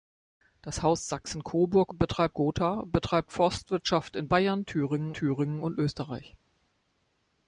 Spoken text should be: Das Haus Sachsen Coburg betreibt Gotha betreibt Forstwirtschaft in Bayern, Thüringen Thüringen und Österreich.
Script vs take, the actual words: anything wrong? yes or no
no